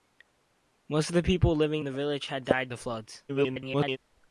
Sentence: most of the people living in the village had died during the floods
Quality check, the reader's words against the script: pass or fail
fail